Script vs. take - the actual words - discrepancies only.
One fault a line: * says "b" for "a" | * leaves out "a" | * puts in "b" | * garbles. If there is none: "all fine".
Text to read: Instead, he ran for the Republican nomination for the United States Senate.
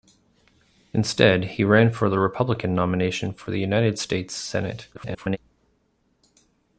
* garbles